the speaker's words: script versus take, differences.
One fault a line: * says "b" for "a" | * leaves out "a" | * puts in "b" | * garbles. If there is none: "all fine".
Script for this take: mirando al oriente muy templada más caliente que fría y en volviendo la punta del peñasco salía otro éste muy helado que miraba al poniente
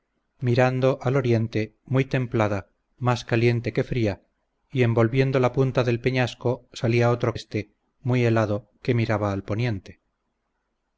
all fine